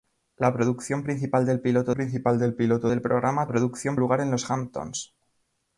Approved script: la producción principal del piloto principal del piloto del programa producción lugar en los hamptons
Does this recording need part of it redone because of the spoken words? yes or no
no